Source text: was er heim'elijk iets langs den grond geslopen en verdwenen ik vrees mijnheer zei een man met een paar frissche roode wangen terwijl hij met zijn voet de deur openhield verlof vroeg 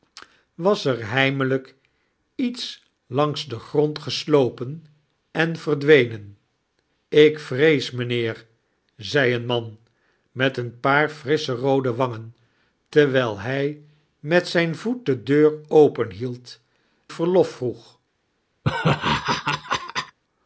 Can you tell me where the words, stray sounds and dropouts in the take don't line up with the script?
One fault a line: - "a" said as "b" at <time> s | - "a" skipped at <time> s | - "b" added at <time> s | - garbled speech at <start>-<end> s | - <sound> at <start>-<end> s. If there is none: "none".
- laugh at 18.6-20.2 s